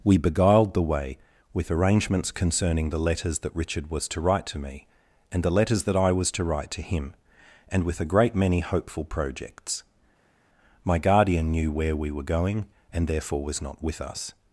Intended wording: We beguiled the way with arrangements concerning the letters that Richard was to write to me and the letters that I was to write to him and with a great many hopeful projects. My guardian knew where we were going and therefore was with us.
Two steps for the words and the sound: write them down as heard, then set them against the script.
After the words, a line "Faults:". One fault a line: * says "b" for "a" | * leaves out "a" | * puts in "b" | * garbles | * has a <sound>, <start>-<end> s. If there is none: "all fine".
We beguiled the way with arrangements concerning the letters that Richard was to write to me and the letters that I was to write to him and with a great many hopeful projects. My guardian knew where we were going and therefore was not with us.
Faults:
* puts in "not"